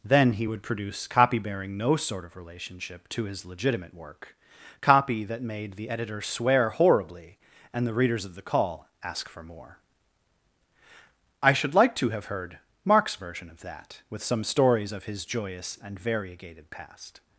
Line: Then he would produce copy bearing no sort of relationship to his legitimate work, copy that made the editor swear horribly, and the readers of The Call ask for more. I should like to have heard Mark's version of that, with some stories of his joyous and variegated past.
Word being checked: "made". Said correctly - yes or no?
yes